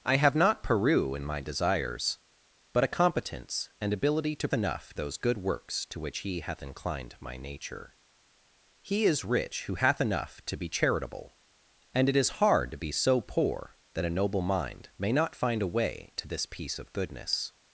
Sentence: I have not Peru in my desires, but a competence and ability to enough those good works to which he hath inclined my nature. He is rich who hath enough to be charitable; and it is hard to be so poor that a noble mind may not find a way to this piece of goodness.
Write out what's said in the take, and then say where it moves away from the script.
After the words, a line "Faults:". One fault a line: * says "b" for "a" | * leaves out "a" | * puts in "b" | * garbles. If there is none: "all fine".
I have not Peru in my desires, but a competence and ability to enough those good works to which he hath inclined my nature. He is rich who hath enough to be charitable; and it is hard to be so poor that a noble mind may not find a way to this piece of goodness.
Faults:
all fine